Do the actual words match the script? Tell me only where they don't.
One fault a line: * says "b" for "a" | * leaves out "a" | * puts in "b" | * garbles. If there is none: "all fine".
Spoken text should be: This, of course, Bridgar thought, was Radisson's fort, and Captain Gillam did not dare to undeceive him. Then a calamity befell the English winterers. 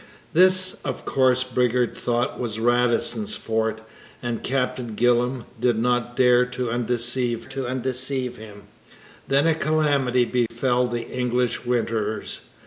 * puts in "to undeceive"